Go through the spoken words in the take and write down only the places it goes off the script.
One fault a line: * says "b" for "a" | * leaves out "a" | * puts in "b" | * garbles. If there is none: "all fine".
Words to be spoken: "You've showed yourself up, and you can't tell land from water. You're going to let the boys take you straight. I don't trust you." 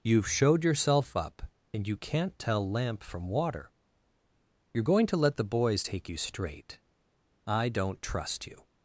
* says "lamp" for "land"